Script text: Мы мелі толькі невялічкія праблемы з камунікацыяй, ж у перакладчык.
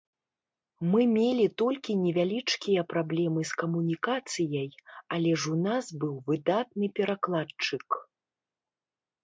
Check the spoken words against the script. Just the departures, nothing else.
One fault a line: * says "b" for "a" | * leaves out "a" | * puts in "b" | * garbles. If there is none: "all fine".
* puts in "але"
* puts in "нас быў выдатны"